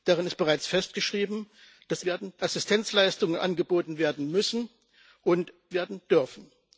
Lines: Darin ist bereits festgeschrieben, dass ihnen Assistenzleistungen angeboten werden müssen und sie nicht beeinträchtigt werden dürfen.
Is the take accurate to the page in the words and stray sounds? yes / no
no